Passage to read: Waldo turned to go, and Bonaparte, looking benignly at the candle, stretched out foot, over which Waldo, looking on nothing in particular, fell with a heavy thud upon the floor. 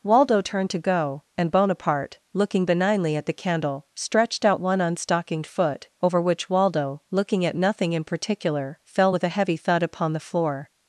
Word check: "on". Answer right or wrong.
wrong